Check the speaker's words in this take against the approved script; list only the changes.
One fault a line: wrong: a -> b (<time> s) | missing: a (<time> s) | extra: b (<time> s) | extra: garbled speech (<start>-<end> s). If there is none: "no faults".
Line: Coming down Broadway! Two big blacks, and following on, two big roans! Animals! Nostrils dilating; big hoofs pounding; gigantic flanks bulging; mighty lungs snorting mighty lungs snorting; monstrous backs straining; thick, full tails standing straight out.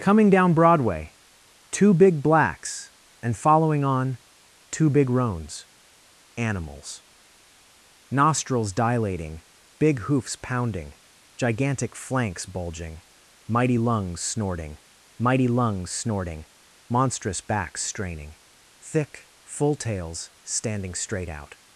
no faults